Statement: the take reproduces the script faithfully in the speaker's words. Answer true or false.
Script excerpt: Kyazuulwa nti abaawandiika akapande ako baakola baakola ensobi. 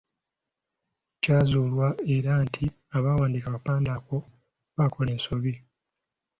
false